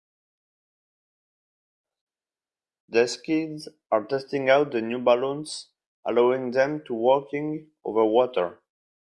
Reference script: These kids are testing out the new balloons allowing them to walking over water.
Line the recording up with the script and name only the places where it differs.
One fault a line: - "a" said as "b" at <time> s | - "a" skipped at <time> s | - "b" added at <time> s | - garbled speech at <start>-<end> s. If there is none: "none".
none